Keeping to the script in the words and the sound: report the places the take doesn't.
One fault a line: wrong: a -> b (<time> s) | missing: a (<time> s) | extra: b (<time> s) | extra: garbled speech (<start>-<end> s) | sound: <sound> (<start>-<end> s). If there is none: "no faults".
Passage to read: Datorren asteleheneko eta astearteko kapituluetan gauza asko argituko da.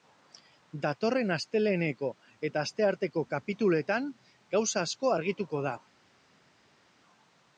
no faults